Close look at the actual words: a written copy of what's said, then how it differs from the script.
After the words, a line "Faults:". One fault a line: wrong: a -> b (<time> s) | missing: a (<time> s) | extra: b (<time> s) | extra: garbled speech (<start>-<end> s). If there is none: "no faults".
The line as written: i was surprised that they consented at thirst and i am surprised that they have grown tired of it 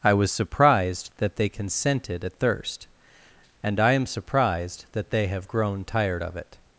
i was surprised that they consented at thirst and i am surprised that they have grown tired of it
Faults:
no faults